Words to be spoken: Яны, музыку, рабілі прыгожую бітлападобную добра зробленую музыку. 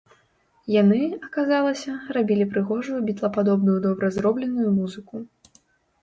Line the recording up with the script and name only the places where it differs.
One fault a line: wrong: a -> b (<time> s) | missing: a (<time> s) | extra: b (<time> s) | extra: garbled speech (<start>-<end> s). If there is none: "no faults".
wrong: музыку -> аказалася (1.3 s)